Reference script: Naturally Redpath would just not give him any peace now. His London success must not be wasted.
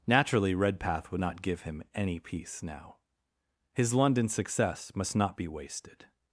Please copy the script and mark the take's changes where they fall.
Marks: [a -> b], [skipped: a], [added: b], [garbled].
Naturally Redpath would [skipped: just] not give him any peace now. His London success must not be wasted.